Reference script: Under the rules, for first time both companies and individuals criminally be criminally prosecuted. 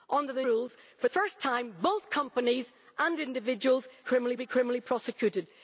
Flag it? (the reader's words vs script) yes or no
no